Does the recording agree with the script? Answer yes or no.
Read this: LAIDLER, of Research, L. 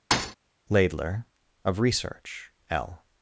yes